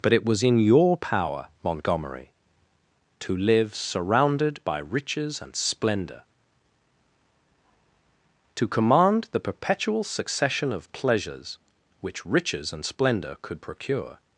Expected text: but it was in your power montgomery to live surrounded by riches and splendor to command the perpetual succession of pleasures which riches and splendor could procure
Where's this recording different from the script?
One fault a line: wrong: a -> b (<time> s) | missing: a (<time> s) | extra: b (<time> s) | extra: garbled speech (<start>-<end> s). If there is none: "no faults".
no faults